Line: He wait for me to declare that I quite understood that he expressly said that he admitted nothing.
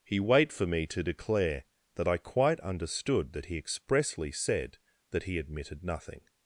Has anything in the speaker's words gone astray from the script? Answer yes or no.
no